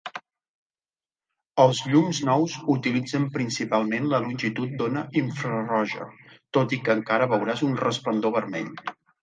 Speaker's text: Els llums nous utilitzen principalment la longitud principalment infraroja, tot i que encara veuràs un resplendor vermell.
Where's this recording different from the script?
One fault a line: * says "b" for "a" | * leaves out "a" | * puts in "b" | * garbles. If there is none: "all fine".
* says "d'ona" for "principalment"